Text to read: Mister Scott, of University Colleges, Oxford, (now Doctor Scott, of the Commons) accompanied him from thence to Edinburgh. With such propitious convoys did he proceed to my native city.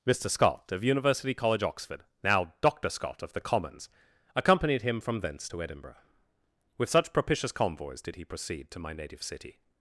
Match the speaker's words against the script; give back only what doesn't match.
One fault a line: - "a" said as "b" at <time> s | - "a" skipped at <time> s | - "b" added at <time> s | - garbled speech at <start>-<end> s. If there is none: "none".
- "Colleges" said as "College" at 1.4 s